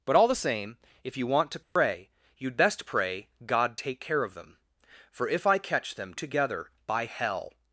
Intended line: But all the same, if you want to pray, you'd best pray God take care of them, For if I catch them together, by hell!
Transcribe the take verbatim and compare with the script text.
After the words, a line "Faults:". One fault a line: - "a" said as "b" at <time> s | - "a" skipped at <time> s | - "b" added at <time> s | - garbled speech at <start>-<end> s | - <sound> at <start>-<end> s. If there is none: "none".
But all the same, if you want to pray, you'd best pray God take care of them, For if I catch them together, by hell!
Faults:
- dropout at 1.6-1.8 s